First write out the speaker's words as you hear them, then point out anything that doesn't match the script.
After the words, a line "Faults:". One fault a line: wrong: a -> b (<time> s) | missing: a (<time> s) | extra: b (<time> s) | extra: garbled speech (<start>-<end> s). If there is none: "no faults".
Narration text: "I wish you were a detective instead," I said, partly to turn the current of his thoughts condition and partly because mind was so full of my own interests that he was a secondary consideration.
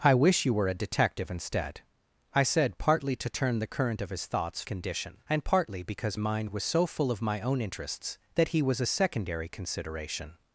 "I wish you were a detective instead," I said, partly to turn the current of his thoughts condition and partly because mind was so full of my own interests that he was a secondary consideration.
Faults:
no faults